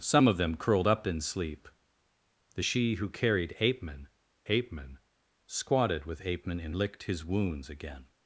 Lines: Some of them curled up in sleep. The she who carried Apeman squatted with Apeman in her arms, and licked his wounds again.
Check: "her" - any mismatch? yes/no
yes